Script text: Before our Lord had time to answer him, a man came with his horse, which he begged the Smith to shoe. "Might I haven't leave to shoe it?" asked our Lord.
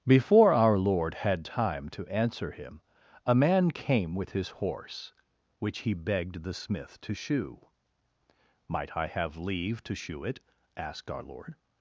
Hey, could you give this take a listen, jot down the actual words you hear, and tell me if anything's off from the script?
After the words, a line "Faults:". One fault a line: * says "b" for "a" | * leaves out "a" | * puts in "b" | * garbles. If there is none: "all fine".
Before our Lord had time to answer him, a man came with his horse, which he begged the Smith to shoe. "Might I have leave to shoe it?" asked our Lord.
Faults:
* says "have" for "haven't"